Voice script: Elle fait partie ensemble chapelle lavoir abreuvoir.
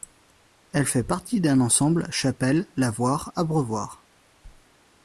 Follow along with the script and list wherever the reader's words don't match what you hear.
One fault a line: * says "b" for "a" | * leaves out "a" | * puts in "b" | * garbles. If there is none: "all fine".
* puts in "d'un"